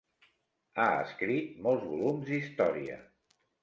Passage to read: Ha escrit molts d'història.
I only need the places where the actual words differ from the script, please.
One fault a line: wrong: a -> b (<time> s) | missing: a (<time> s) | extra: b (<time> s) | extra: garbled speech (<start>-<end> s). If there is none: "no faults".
extra: volums (1.9 s)